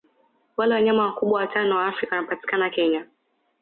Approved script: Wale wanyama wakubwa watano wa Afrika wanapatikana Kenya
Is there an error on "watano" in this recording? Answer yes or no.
no